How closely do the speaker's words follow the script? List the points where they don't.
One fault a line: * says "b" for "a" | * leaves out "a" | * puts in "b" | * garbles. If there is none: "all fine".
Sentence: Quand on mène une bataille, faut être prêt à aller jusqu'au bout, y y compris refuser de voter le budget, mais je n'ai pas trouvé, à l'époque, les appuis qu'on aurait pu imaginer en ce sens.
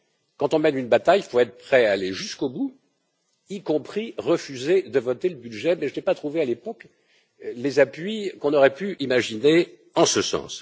* puts in "il"
* leaves out "y"